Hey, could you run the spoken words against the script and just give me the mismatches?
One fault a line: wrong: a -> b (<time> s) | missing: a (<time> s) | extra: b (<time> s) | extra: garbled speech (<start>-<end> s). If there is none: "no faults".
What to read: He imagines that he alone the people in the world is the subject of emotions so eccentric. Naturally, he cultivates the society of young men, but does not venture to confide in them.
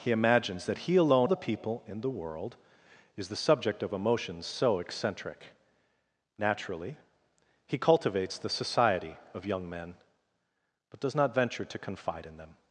no faults